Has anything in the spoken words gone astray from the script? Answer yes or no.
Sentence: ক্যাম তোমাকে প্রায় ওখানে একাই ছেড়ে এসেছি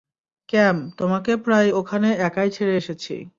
no